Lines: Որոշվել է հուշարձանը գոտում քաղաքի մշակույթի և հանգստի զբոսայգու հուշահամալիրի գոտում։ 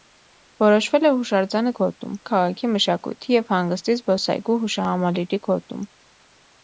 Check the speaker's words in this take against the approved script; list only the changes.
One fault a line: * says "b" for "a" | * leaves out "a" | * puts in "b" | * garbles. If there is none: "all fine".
all fine